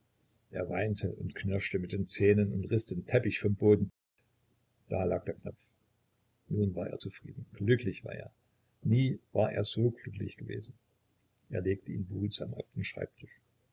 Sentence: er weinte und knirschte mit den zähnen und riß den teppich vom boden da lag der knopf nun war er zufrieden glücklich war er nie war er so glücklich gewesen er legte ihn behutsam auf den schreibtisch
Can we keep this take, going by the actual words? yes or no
yes